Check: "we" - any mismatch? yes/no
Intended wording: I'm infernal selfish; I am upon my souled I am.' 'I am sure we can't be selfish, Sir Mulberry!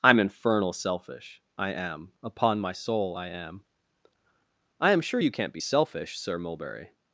yes